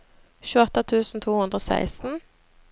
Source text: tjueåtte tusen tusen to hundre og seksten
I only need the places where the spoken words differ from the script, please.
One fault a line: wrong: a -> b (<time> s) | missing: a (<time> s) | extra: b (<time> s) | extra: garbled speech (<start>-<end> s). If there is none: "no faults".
missing: tusen (1.2 s)